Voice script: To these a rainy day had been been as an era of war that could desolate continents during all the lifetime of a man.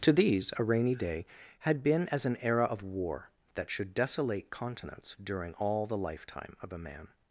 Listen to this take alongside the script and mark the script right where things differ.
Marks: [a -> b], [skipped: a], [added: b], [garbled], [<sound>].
To these a rainy day had been [skipped: been] as an era of war that [could -> should] desolate continents during all the lifetime of a man.